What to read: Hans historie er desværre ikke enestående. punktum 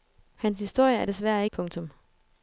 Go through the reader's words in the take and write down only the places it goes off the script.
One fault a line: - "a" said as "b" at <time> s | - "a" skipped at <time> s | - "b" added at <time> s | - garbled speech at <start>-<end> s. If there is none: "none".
- "ikke enestående" skipped at 1.5 s